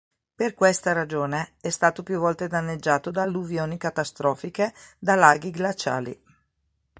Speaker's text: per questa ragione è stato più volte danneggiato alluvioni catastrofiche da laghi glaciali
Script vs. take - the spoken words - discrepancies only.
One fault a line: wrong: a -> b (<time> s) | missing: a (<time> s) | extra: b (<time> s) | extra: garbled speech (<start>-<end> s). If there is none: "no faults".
extra: da (3.1 s)